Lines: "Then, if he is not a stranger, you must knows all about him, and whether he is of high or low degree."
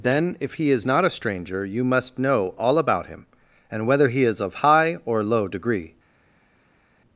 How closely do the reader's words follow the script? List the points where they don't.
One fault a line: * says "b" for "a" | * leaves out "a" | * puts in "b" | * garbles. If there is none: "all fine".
* says "know" for "knows"